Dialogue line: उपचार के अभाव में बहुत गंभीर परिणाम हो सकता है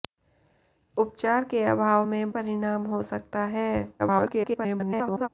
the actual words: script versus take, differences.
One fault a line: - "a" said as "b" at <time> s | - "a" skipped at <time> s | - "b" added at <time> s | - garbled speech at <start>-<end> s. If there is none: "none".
- "बहुत गंभीर" skipped at 2.3 s
- garbled speech at 4.0-5.3 s